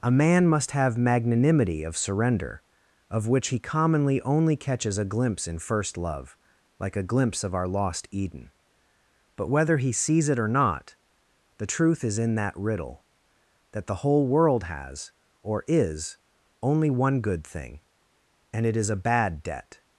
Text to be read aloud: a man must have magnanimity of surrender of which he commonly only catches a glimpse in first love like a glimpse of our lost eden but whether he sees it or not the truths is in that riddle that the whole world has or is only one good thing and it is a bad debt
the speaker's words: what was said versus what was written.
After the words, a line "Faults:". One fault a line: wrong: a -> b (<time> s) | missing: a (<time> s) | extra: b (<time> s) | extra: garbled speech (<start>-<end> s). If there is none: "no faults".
a man must have magnanimity of surrender of which he commonly only catches a glimpse in first love like a glimpse of our lost eden but whether he sees it or not the truth is in that riddle that the whole world has or is only one good thing and it is a bad debt
Faults:
wrong: truths -> truth (11.7 s)